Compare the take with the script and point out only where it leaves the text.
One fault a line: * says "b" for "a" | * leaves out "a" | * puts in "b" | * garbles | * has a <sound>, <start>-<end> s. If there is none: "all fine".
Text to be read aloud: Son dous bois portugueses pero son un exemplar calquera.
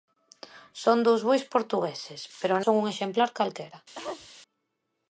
* has a cough, 4.0-4.3 s